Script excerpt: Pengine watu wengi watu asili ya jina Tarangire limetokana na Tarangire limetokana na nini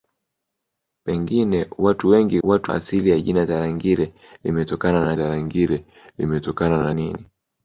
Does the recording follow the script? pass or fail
pass